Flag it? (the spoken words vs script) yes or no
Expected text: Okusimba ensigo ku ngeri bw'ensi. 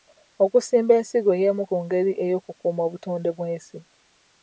yes